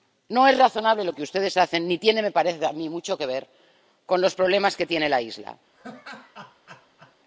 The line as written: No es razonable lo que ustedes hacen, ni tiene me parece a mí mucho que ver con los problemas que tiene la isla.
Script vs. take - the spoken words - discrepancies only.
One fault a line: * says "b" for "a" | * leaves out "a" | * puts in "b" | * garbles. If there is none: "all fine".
all fine